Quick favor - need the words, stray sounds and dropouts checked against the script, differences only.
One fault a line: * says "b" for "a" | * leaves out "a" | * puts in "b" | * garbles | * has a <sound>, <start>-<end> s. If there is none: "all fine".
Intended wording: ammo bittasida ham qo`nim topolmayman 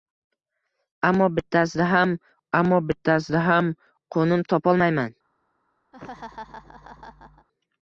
* puts in "ammo bittasida ham"
* has a laugh, 5.9-7.5 s